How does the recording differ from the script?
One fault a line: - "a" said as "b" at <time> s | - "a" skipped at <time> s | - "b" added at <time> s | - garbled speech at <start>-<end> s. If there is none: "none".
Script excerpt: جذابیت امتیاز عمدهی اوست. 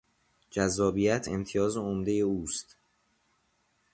none